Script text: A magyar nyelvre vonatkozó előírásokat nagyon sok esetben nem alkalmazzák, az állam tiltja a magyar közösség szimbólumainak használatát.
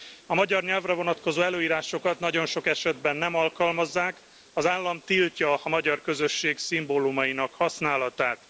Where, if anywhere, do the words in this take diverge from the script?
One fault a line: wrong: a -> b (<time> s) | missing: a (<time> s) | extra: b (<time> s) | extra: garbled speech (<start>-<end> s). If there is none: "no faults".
no faults